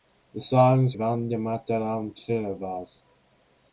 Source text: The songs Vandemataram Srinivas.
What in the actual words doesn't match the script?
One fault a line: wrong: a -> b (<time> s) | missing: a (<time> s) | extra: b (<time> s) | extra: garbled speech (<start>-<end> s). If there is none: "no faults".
no faults